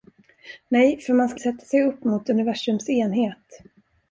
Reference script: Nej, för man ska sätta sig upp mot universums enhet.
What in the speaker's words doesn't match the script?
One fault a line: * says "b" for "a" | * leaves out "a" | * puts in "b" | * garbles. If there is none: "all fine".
all fine